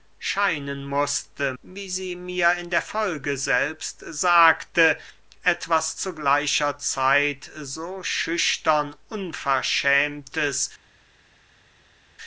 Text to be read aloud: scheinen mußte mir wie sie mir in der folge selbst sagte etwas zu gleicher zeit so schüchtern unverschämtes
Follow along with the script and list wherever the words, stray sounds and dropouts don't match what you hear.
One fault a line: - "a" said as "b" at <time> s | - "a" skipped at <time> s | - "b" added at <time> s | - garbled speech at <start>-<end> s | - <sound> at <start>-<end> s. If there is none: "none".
- "mir" skipped at 1.5 s